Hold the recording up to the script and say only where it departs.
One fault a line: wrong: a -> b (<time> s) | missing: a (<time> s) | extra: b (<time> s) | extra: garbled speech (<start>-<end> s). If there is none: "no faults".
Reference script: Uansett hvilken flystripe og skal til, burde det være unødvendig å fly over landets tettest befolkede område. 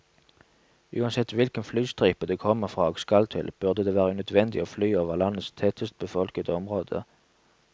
extra: det kommer fra (2.2 s)